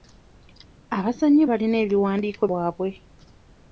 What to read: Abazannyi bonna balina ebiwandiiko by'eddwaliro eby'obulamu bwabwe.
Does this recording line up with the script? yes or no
no